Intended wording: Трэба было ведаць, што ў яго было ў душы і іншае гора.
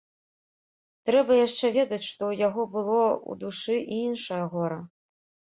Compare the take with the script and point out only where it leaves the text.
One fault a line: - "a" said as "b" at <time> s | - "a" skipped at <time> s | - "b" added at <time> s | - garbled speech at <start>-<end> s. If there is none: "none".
- "было" said as "яшчэ" at 1.5 s